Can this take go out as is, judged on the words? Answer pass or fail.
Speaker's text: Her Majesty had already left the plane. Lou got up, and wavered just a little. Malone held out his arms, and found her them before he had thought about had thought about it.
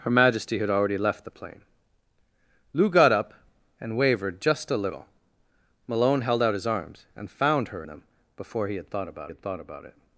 pass